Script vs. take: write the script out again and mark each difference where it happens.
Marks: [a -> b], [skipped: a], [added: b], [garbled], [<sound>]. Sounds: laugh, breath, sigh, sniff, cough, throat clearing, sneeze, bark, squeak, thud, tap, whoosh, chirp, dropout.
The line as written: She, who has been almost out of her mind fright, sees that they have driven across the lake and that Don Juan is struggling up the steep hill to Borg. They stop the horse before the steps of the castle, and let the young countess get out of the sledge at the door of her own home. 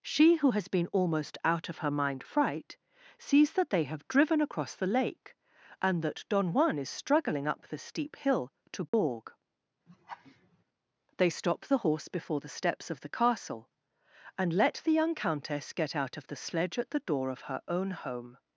She, who has been almost out of her mind fright, sees that they have driven across the lake and that Don Juan is struggling up the steep hill to Borg. [dropout] [laugh] They stop the horse before the steps of the castle, and let the young countess get out of the sledge at the door of her own home.